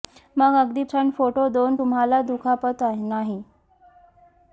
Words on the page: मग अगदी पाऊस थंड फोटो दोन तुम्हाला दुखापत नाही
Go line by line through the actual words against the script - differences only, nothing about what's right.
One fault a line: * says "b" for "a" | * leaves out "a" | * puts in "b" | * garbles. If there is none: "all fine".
* leaves out "पाऊस"